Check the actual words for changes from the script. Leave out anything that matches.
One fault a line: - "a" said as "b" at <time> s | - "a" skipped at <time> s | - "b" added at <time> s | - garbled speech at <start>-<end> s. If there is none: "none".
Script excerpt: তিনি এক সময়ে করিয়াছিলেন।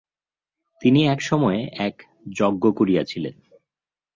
- "এক যজ্ঞ" added at 1.8 s